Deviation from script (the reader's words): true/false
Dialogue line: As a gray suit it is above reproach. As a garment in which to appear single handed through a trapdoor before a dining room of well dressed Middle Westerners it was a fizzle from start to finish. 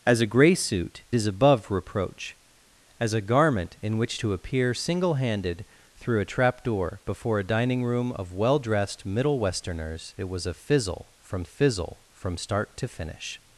true